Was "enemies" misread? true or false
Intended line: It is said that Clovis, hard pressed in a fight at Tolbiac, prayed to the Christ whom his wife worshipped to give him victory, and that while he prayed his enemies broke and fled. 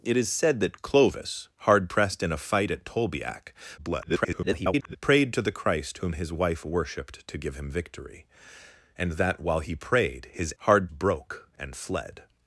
true